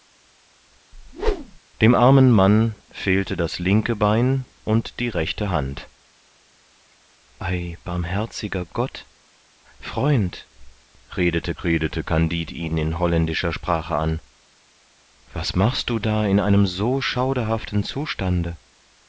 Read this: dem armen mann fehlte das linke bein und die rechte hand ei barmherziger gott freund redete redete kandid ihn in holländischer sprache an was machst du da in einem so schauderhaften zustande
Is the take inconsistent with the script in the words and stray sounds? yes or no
yes